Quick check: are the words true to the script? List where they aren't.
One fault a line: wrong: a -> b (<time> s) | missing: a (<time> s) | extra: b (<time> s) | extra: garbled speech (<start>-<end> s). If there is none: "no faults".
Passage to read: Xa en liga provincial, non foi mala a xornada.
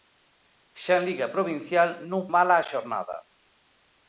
missing: foi (2.2 s)